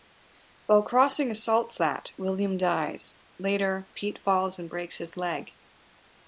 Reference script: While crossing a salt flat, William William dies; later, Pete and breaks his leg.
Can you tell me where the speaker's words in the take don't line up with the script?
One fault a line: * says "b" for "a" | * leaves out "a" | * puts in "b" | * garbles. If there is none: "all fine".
* leaves out "William"
* puts in "falls"